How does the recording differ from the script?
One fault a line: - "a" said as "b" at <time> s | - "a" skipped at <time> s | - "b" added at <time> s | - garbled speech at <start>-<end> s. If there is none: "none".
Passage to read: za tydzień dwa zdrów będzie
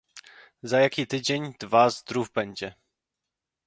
- "jaki" added at 0.8 s